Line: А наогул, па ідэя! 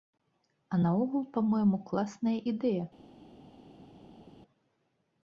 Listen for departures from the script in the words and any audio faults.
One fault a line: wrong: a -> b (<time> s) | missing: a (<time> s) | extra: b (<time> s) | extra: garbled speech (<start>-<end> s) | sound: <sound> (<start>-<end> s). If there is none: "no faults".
extra: мойму класная (1.5 s)